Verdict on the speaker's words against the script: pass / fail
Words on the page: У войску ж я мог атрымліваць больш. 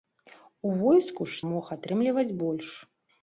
fail